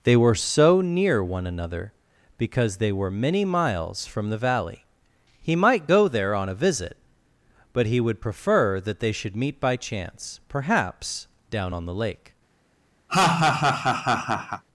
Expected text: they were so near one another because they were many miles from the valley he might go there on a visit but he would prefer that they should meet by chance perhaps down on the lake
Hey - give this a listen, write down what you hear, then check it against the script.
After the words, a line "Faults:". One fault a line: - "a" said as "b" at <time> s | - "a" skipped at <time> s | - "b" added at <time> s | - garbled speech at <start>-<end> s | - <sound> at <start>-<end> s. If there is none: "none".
they were so near one another because they were many miles from the valley he might go there on a visit but he would prefer that they should meet by chance perhaps down on the lake
Faults:
- laugh at 13.1-14.6 s